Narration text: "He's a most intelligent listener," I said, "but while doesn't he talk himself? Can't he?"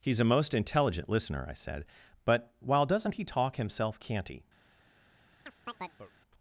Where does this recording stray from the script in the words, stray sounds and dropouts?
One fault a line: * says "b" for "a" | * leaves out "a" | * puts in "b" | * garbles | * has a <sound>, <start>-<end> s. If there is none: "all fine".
* has a chirp, 5.5-6.1 s